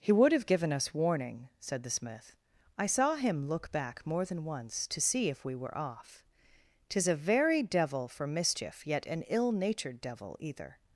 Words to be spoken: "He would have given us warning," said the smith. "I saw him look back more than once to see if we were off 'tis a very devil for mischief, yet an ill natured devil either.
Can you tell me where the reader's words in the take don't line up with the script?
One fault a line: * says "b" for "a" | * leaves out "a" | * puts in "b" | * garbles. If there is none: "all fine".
all fine